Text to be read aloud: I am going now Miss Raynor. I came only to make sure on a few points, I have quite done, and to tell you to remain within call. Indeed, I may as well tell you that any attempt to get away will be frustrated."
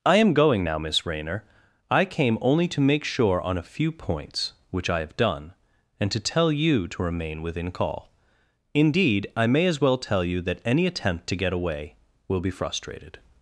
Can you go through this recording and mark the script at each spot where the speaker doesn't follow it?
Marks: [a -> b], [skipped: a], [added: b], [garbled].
I am going now Miss Raynor. I came only to make sure on a few points, [added: which] I have [skipped: quite] done, and to tell you to remain within call. Indeed, I may as well tell you that any attempt to get away will be frustrated."